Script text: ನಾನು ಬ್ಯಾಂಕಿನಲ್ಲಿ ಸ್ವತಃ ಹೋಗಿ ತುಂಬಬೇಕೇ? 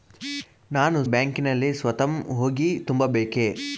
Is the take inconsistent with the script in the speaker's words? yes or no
no